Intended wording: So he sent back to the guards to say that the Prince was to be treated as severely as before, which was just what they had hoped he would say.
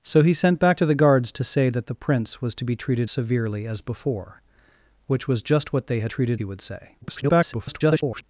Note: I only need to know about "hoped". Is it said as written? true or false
false